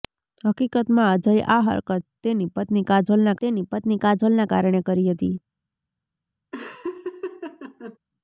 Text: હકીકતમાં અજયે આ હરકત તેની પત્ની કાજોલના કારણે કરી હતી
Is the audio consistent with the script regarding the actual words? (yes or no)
no